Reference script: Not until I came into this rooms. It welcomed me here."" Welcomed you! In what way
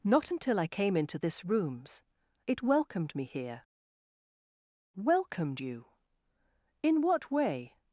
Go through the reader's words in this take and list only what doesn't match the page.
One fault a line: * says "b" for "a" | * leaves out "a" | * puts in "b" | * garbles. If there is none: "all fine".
all fine